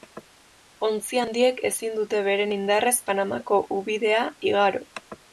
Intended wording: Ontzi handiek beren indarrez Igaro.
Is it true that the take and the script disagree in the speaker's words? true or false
true